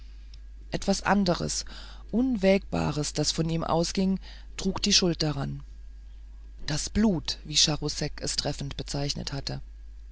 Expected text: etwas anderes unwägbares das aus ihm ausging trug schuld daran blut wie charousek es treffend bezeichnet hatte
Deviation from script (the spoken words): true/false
true